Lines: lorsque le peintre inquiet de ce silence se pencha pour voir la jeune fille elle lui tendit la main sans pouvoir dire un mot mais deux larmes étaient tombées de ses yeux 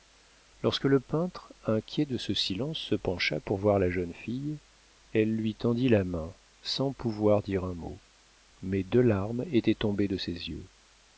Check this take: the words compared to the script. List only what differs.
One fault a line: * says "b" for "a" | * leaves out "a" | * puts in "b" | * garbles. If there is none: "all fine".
all fine